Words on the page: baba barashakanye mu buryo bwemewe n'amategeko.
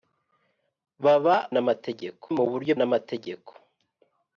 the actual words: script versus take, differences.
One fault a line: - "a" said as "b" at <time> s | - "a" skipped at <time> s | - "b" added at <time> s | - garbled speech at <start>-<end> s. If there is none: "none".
- "barashakanye" said as "n'amategeko" at 1.5 s
- "bwemewe" skipped at 2.7 s